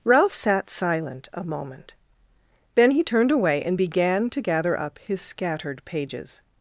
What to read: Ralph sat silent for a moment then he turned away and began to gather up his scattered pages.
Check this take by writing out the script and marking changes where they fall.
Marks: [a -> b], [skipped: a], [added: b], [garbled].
Ralph sat silent [skipped: for] a moment then he turned away and began to gather up his scattered pages.